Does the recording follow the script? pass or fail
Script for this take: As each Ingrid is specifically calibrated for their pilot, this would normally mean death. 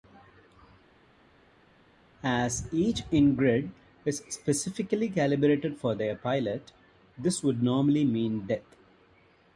pass